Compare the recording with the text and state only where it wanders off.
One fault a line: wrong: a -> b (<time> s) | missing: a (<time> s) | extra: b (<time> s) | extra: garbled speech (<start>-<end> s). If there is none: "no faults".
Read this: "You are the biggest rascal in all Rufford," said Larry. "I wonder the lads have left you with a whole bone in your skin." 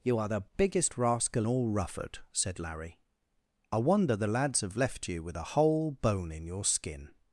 missing: in (1.4 s)